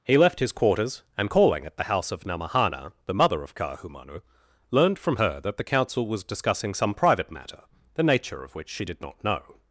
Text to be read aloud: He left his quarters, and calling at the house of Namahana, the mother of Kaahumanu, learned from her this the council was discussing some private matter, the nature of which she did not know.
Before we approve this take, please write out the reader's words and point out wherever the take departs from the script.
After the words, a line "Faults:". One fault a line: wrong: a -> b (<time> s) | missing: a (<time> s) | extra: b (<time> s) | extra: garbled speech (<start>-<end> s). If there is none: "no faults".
He left his quarters, and calling at the house of Namahana, the mother of Kaahumanu, learned from her that the council was discussing some private matter, the nature of which she did not know.
Faults:
wrong: this -> that (5.4 s)